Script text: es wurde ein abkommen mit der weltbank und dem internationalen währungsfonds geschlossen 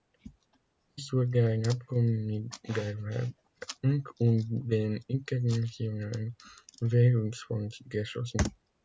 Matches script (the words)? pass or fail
pass